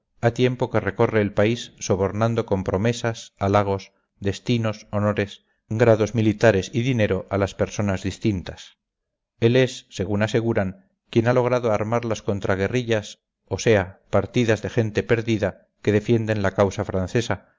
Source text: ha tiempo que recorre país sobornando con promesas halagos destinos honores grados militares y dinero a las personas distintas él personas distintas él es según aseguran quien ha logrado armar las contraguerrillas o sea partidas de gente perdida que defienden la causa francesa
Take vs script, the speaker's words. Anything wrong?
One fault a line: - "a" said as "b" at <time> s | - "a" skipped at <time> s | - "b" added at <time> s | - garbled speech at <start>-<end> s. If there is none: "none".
- "el" added at 1.2 s
- "personas distintas él" skipped at 9.6 s